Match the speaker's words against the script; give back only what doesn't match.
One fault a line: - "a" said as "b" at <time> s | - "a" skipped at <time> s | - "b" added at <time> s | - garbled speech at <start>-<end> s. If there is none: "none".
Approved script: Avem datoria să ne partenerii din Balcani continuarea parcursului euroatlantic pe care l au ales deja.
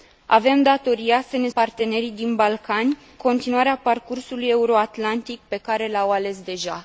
none